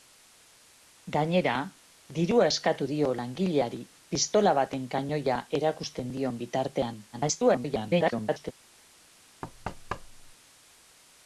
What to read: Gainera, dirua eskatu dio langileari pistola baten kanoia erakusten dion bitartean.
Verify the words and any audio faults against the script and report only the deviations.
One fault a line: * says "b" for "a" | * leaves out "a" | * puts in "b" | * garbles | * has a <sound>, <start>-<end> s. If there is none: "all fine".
* garbles
* has a thud, 9.4-10.3 s